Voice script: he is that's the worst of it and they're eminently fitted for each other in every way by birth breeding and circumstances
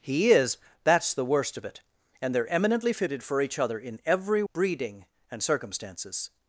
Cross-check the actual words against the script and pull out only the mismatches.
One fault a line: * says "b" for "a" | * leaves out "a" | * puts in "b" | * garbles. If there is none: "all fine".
* leaves out "way by birth"